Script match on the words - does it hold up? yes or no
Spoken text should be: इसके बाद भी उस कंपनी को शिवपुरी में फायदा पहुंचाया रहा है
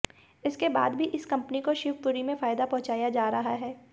no